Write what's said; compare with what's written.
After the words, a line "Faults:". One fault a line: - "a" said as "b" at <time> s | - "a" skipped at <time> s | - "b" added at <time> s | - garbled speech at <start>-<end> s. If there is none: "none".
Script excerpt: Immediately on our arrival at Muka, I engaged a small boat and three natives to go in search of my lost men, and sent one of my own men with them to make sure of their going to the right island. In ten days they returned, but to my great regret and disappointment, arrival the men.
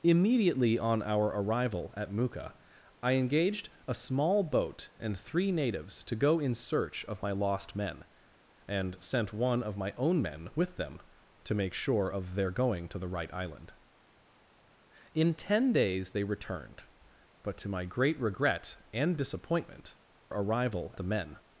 Immediately on our arrival at Muka, I engaged a small boat and three natives to go in search of my lost men, and sent one of my own men with them to make sure of their going to the right island. In ten days they returned, but to my great regret and disappointment, arrival the men.
Faults:
none